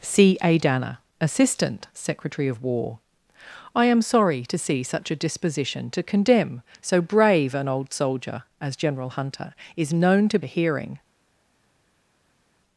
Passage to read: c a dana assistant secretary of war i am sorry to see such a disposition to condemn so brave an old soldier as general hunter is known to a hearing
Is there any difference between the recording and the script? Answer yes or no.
no